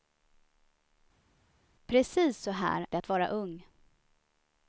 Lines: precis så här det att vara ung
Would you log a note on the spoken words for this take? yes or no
no